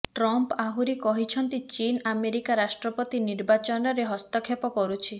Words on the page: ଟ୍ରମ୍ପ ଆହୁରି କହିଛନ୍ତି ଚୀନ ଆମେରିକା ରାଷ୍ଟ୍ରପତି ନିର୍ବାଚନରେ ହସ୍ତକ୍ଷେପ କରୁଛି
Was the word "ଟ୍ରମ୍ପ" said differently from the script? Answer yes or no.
no